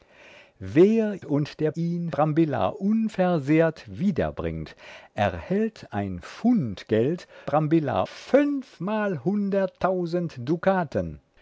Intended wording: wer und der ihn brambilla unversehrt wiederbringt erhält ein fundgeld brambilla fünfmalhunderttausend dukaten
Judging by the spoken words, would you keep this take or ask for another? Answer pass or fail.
pass